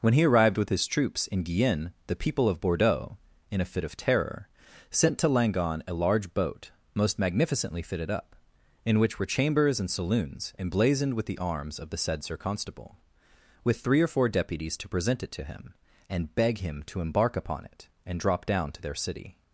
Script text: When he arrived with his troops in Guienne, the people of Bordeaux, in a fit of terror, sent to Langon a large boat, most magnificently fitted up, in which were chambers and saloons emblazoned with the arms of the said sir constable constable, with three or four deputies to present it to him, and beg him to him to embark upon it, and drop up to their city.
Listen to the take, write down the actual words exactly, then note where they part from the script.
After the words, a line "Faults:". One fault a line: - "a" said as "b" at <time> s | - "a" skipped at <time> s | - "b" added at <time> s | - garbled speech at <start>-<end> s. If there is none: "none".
When he arrived with his troops in Guienne, the people of Bordeaux, in a fit of terror, sent to Langon a large boat, most magnificently fitted up, in which were chambers and saloons emblazoned with the arms of the said sir constable, with three or four deputies to present it to him, and beg him to embark upon it, and drop down to their city.
Faults:
- "constable" skipped at 13.0 s
- "him to" skipped at 17.0 s
- "up" said as "down" at 18.5 s